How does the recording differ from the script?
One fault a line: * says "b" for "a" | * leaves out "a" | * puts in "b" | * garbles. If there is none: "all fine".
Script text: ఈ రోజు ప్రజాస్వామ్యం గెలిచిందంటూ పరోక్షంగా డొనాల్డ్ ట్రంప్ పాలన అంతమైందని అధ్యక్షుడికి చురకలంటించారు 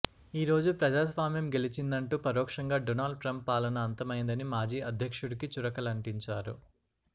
* puts in "మాజీ"